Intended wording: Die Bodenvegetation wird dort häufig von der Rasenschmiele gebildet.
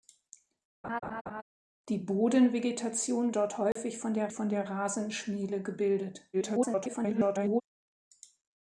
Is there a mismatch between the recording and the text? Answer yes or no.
yes